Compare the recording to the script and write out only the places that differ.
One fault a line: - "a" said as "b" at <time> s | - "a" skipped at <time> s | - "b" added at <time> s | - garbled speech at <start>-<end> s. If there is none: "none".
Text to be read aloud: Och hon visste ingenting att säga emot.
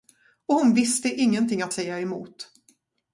none